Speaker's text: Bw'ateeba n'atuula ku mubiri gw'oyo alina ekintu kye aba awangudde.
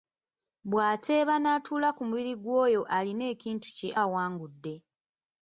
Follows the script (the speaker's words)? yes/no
no